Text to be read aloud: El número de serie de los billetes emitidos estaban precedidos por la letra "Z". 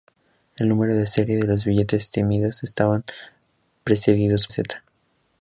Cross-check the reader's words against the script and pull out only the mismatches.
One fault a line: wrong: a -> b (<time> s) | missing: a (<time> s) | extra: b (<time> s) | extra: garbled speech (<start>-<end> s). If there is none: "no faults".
missing: por la letra (4.5 s)